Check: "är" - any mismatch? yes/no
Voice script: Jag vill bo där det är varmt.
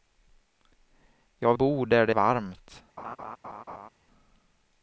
yes